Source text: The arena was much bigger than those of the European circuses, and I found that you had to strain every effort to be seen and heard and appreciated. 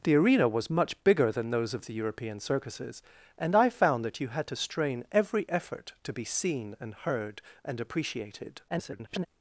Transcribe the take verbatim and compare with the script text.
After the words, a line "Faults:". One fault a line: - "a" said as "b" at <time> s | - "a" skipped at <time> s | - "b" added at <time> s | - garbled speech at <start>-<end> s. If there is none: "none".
The arena was much bigger than those of the European circuses, and I found that you had to strain every effort to be seen and heard and appreciated. [garbled]
Faults:
- garbled speech at 8.7-9.3 s